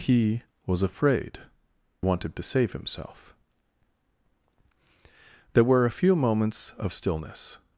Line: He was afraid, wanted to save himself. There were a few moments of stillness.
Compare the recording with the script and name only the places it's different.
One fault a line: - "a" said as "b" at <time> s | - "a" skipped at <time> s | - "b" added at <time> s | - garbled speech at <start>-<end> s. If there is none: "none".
none